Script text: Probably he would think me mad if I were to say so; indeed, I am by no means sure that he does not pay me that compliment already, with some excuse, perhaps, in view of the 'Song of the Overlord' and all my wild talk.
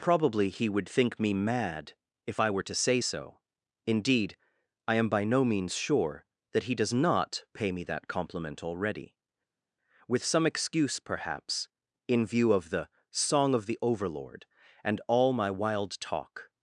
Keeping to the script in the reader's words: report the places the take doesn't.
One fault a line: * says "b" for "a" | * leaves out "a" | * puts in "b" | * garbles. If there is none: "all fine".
all fine